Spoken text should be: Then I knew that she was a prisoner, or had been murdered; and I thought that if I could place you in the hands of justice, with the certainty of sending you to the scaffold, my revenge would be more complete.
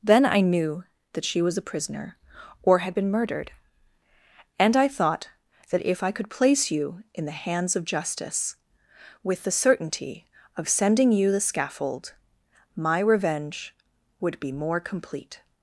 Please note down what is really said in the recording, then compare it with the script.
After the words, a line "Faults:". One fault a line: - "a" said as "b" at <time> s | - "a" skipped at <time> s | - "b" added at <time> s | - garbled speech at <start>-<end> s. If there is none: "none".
Then I knew that she was a prisoner, or had been murdered; and I thought that if I could place you in the hands of justice, with the certainty of sending you the scaffold, my revenge would be more complete.
Faults:
- "to" skipped at 11.3 s